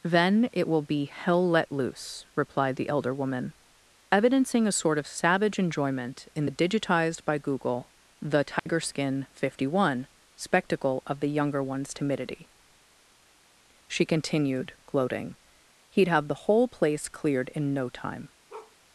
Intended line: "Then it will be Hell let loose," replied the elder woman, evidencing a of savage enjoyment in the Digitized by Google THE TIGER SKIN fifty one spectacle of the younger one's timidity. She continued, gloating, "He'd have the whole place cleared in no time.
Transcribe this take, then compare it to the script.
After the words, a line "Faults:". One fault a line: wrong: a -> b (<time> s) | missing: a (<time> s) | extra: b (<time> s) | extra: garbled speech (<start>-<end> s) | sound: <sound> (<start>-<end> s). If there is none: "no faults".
"Then it will be Hell let loose," replied the elder woman, evidencing a sort of savage enjoyment in the Digitized by Google THE TIGER SKIN fifty one spectacle of the younger one's timidity. She continued, gloating, "He'd have the whole place cleared in no time.
Faults:
extra: sort (4.7 s)
sound: dropout (8.6-8.7 s)
sound: bark (18.5-18.8 s)